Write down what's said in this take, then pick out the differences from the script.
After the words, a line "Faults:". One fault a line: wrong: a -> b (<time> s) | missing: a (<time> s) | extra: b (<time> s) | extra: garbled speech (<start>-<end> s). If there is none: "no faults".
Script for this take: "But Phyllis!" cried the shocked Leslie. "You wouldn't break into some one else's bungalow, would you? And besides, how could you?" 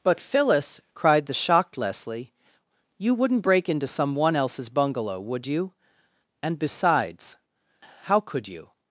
"But Phyllis!" cried the shocked Leslie. "You wouldn't break into some one else's bungalow, would you? And besides, how could you?"
Faults:
no faults